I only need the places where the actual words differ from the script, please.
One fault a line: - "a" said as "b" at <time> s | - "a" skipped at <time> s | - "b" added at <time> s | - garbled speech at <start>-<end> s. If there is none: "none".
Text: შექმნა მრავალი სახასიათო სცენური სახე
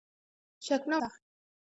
- "მრავალი სახასიათო სცენური" skipped at 1.0 s